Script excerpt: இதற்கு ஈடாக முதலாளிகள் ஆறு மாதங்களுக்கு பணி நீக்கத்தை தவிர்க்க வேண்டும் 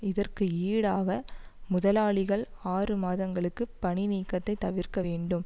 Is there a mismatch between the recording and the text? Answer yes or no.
no